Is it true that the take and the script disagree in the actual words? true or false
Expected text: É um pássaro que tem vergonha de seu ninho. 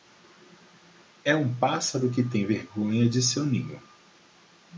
false